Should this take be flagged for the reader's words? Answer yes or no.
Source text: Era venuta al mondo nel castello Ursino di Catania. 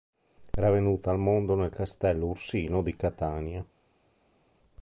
no